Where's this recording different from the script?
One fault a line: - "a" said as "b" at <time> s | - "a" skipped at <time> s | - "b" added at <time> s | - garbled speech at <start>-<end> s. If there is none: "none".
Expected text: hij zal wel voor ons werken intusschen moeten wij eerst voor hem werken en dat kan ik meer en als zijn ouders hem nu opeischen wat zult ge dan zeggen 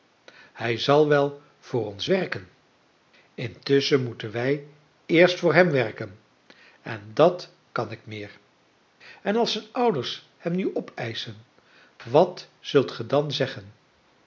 none